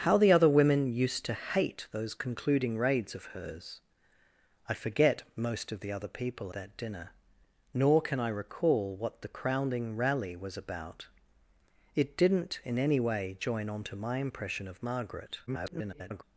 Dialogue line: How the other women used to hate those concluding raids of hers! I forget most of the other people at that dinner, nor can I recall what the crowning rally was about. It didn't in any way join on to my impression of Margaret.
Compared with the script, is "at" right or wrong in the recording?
wrong